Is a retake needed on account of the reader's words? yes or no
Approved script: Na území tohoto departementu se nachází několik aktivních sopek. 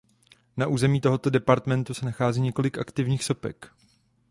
no